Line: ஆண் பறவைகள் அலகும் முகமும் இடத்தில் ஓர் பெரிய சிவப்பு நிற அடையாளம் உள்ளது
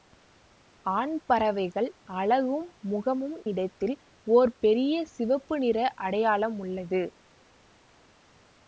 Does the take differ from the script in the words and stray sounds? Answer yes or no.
no